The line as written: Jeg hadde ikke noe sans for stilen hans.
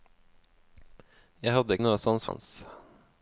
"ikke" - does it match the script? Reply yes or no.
no